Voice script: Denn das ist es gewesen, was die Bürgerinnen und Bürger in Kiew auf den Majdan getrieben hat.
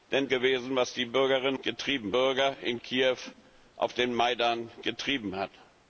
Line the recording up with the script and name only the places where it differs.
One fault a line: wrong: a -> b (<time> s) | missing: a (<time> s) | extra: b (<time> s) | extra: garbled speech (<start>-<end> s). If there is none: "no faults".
missing: das ist es (0.3 s)
wrong: und -> getrieben (1.6 s)